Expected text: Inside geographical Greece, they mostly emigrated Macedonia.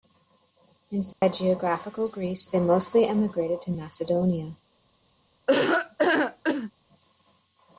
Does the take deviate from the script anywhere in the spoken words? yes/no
yes